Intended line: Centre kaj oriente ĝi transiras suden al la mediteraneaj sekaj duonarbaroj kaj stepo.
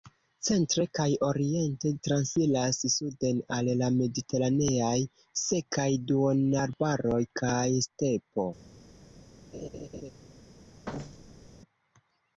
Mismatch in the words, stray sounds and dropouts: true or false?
true